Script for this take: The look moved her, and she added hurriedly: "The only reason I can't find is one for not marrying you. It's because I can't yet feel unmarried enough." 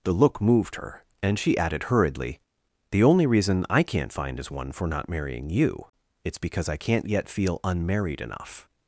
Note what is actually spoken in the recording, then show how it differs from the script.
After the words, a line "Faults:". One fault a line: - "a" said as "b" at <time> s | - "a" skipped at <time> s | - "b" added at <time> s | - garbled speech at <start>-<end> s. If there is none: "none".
The look moved her, and she added hurriedly: "The only reason I can't find is one for not marrying you. It's because I can't yet feel unmarried enough."
Faults:
none